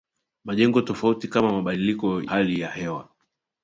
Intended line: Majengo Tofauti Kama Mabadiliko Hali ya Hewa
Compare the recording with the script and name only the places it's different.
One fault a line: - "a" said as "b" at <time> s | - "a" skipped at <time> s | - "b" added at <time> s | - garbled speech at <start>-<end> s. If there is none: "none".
none